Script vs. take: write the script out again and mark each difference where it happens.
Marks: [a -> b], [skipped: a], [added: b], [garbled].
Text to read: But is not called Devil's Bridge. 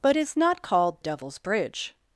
But is not called Devil's Bridge.